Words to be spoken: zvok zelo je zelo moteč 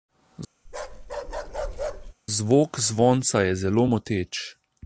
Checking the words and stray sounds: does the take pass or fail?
fail